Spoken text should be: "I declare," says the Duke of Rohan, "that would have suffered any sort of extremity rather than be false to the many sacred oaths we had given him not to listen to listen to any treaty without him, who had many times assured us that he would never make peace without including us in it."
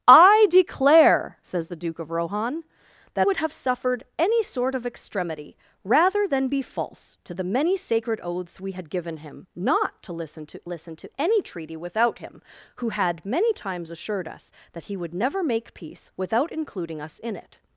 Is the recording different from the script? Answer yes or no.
no